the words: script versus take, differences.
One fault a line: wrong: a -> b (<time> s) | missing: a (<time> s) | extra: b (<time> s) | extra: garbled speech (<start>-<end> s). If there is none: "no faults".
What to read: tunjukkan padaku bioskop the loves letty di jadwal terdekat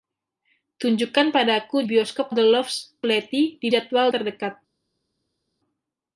no faults